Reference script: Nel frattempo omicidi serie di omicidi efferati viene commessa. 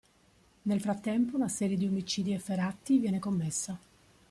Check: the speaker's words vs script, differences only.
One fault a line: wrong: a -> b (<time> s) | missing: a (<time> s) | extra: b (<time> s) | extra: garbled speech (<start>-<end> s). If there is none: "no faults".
wrong: omicidi -> una (1.4 s)